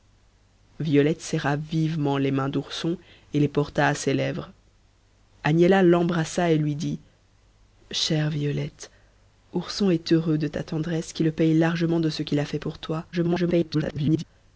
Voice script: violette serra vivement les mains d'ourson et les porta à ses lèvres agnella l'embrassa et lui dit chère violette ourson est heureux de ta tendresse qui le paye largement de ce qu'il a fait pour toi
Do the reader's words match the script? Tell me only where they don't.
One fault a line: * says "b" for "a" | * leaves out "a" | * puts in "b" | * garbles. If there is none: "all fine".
* garbles